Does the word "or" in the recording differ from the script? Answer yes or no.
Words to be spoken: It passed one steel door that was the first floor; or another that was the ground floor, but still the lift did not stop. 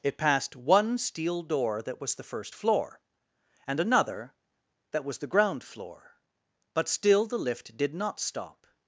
yes